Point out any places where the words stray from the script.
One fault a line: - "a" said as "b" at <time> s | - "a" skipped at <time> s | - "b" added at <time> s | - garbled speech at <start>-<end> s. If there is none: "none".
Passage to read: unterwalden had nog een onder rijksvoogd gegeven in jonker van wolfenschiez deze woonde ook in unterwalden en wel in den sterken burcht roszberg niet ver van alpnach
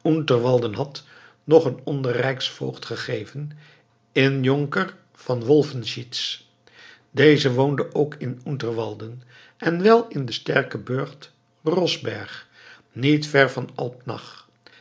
none